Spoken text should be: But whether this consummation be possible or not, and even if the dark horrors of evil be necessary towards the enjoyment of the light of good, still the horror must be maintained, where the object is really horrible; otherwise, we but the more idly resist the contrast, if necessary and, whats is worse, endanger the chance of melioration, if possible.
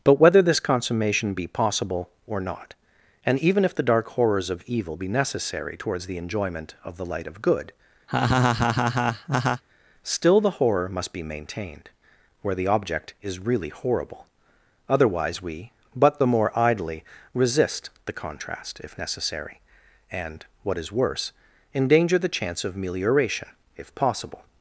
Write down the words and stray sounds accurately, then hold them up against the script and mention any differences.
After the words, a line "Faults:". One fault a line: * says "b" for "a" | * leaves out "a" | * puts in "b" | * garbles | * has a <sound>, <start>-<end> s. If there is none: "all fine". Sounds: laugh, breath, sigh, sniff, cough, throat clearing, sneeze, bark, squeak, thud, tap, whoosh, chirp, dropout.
But whether this consummation be possible or not, and even if the dark horrors of evil be necessary towards the enjoyment of the light of good, still the horror must be maintained, where the object is really horrible; otherwise, we but the more idly resist the contrast, if necessary and, what is worse, endanger the chance of melioration, if possible.
Faults:
* has a laugh, 8.1-9.6 s
* says "what" for "whats"